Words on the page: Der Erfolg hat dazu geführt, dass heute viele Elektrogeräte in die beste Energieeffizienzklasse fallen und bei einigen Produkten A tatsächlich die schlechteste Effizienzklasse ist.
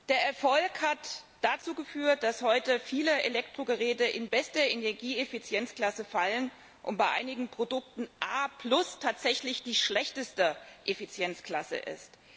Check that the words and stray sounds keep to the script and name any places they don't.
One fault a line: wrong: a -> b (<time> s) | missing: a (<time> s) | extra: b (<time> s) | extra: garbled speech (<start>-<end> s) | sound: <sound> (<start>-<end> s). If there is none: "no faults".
missing: die (4.3 s)